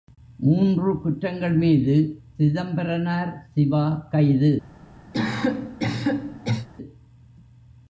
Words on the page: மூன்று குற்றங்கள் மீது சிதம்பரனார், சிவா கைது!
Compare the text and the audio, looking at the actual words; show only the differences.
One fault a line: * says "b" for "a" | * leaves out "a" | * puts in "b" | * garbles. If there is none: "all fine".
all fine